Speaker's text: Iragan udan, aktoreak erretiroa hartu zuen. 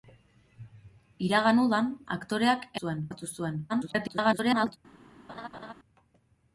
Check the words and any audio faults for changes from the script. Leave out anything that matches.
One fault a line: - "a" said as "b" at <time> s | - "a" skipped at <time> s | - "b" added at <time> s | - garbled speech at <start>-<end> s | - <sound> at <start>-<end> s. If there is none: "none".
- "erretiroa" said as "zuen" at 2.8 s
- garbled speech at 3.7-4.8 s
- laugh at 5.3-5.7 s